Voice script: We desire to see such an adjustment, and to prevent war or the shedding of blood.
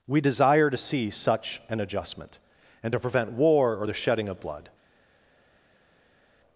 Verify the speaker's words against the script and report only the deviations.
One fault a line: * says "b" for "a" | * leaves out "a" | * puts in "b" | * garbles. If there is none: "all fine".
all fine